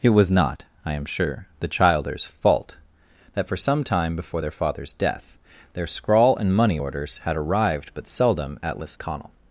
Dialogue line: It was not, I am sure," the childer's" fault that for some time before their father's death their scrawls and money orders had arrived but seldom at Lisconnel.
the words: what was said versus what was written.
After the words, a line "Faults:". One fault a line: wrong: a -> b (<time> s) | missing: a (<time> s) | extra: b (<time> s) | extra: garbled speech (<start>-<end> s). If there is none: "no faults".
It was not, I am sure," the childer's" fault that for some time before their father's death their scrawl and money orders had arrived but seldom at Lisconnel.
Faults:
wrong: scrawls -> scrawl (5.9 s)